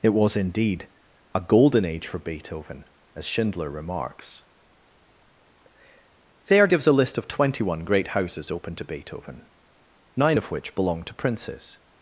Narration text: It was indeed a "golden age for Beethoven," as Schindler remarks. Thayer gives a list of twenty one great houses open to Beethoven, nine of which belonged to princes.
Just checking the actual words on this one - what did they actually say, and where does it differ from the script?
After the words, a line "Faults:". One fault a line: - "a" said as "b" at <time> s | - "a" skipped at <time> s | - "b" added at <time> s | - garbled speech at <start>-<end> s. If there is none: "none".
It was indeed a "golden age for Beethoven," as Schindler remarks. Thayer gives a list of twenty one great houses open to Beethoven, nine of which belonged to princes.
Faults:
none